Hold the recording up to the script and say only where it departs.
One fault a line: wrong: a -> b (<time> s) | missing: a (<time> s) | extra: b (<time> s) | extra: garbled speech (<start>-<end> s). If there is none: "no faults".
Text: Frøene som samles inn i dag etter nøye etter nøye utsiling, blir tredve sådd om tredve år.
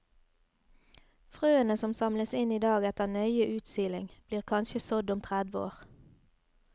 missing: etter nøye (3.5 s)
wrong: tredve -> kanskje (4.5 s)